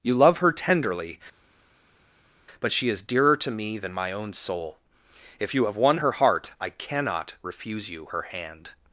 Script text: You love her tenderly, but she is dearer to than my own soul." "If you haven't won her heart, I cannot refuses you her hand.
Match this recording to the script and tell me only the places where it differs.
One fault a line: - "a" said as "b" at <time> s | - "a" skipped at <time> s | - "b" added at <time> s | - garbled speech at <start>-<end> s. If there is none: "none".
- "me" added at 3.5 s
- "haven't" said as "have" at 5.7 s
- "refuses" said as "refuse" at 7.4 s